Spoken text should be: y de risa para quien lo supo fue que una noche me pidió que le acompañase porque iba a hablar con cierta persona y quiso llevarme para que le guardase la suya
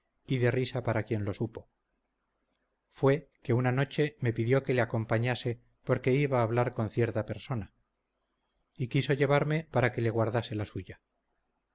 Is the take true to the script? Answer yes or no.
yes